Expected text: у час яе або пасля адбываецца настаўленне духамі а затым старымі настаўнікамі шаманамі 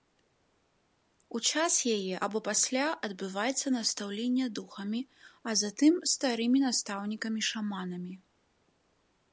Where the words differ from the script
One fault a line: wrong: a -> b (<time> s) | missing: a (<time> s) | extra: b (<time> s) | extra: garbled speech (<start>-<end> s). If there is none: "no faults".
no faults